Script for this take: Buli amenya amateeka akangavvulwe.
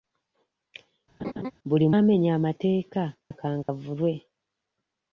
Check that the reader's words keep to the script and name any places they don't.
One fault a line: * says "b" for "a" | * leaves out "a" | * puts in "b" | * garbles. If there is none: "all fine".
all fine